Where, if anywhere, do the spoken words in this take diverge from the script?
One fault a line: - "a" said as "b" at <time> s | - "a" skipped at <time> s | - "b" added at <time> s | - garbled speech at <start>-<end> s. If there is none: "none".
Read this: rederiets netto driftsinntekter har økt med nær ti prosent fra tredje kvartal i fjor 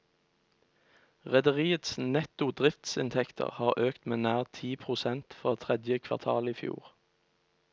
none